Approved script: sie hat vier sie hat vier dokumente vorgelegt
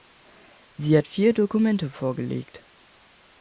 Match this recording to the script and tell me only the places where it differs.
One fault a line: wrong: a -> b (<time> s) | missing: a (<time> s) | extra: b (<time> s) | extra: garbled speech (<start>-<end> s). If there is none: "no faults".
missing: sie hat vier (1.3 s)